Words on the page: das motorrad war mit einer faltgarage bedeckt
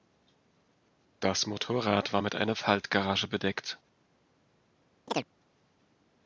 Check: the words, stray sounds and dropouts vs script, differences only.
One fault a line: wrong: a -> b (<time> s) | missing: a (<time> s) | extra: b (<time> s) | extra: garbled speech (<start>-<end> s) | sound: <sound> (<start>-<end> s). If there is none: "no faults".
sound: chirp (5.1-5.3 s)